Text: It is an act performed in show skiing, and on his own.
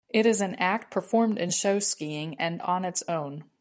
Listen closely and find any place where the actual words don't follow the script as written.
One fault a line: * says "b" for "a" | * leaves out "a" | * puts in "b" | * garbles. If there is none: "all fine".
* says "its" for "his"